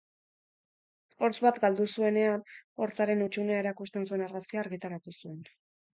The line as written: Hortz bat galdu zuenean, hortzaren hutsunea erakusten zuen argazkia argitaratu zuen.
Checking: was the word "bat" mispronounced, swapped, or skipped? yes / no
no